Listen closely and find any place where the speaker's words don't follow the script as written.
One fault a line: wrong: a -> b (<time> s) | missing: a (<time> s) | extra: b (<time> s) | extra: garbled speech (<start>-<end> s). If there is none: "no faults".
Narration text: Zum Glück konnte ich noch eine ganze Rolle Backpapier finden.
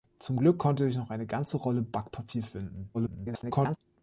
extra: garbled speech (2.9-3.8 s)